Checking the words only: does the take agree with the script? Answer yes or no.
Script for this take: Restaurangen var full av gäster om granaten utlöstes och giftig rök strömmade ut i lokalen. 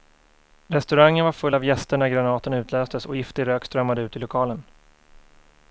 no